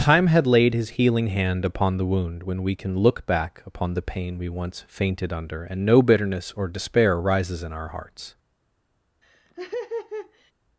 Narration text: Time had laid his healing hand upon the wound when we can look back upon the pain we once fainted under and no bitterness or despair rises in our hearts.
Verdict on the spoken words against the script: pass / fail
pass